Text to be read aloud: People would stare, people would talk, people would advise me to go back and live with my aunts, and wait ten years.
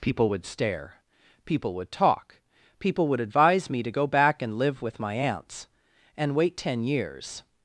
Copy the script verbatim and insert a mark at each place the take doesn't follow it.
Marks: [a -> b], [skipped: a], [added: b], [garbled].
People would stare, people would talk, people would advise me to go back and live with my aunts, and wait ten years.